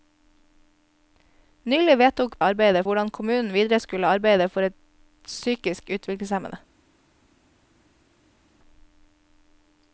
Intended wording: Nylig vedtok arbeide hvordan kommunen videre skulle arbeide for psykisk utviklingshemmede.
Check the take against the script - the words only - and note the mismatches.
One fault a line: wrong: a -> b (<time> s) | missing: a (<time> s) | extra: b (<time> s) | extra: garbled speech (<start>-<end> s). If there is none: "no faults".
no faults